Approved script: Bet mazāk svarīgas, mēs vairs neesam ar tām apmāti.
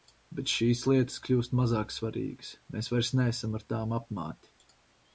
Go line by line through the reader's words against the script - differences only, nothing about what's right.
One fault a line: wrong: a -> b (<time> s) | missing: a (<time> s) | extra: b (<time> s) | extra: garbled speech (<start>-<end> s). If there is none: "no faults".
extra: šīs lietas kļūst (0.5 s)